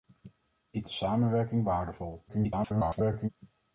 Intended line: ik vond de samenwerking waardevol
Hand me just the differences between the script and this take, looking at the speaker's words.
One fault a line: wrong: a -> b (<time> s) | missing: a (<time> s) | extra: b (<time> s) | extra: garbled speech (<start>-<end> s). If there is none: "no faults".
missing: vond (0.9 s)
extra: garbled speech (2.3-3.3 s)